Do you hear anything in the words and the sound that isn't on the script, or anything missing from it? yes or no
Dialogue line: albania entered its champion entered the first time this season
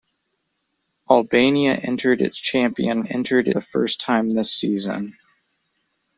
no